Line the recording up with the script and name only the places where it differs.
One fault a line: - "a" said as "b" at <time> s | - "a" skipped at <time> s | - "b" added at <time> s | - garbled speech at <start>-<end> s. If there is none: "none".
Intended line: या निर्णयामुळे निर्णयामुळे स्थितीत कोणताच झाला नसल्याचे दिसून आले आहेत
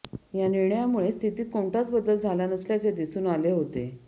- "निर्णयामुळे" skipped at 1.1 s
- "बदल" added at 1.9 s
- "आहेत" said as "होते" at 3.5 s